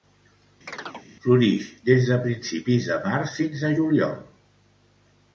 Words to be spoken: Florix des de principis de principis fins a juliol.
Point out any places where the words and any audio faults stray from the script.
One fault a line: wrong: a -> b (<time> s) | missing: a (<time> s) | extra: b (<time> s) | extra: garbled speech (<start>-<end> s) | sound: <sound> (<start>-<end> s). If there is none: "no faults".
sound: chirp (0.7-1.1 s)
wrong: principis -> març (3.1 s)